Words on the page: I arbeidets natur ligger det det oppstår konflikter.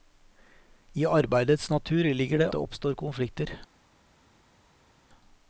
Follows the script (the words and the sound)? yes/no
yes